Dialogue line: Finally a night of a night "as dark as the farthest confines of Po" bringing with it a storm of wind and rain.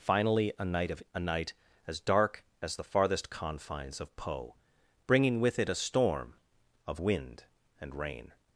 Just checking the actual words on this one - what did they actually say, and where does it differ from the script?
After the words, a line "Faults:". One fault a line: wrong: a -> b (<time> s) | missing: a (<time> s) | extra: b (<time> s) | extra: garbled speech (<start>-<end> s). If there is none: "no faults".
Finally a night of a night "as dark as the farthest confines of Po" bringing with it a storm of wind and rain.
Faults:
no faults